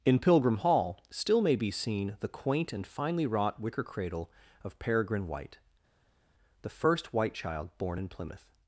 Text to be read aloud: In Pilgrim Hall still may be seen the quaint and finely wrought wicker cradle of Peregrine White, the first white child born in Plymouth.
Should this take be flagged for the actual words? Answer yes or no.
no